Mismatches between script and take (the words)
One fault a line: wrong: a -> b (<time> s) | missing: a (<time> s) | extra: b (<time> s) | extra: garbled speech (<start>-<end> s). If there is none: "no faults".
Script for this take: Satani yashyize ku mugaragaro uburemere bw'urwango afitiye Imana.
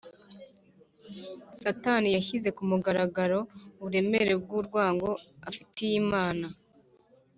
no faults